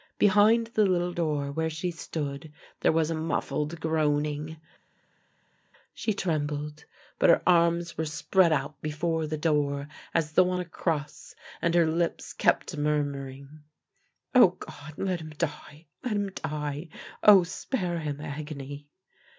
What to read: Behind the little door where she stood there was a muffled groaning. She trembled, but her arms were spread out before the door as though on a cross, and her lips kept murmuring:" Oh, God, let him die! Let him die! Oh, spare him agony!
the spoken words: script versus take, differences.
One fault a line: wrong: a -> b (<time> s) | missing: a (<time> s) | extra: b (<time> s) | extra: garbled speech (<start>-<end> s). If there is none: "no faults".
no faults